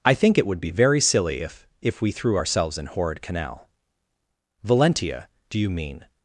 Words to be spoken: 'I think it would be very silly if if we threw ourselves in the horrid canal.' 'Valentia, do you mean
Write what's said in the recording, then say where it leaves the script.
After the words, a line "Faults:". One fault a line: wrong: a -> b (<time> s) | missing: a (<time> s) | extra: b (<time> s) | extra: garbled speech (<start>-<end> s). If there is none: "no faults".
'I think it would be very silly if if we threw ourselves in horrid canal.' 'Valentia, do you mean
Faults:
missing: the (2.9 s)